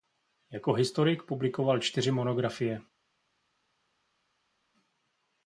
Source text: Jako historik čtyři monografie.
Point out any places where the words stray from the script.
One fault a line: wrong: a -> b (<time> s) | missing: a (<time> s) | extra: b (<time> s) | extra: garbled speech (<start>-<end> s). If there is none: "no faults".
extra: publikoval (1.2 s)